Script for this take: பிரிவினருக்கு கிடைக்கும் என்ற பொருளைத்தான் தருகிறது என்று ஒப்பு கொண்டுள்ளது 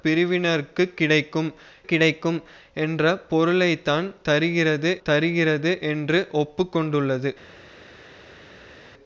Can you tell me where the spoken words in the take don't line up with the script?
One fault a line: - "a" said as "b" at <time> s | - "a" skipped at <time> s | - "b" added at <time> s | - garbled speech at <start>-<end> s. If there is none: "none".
- "கிடைக்கும்" added at 1.8 s
- "தருகிறது" added at 5.0 s